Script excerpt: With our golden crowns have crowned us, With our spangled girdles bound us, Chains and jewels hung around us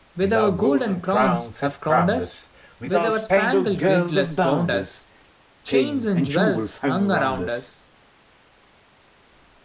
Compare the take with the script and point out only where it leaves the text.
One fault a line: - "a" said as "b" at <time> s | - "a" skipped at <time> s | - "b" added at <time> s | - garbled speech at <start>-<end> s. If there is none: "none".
none